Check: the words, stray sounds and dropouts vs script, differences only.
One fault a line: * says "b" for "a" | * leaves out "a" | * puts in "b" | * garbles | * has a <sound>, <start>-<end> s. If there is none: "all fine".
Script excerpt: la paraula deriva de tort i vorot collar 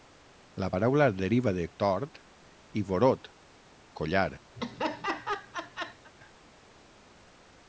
* has a laugh, 4.6-6.1 s